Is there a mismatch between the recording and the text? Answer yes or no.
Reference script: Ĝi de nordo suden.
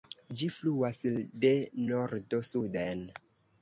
yes